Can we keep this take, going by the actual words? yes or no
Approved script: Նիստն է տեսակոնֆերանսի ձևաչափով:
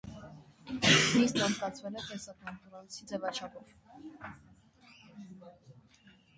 no